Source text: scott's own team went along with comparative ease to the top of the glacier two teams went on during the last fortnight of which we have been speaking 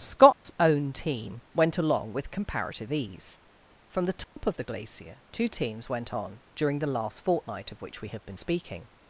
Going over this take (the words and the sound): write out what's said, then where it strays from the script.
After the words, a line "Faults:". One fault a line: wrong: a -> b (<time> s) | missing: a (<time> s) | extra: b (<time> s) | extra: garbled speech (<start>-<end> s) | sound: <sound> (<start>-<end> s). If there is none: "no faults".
scott's own team went along with comparative ease from the top of the glacier two teams went on during the last fortnight of which we have been speaking
Faults:
sound: dropout (0.3-0.5 s)
wrong: to -> from (3.9 s)
sound: dropout (4.2-4.4 s)